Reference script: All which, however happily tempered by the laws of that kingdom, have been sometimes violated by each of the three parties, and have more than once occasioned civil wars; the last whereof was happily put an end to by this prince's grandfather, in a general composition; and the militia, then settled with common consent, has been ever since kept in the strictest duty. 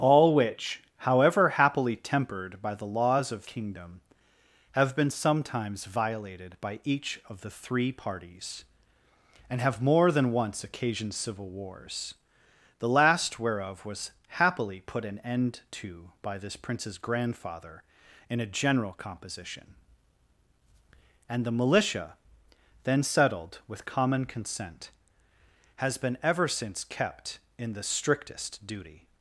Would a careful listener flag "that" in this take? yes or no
yes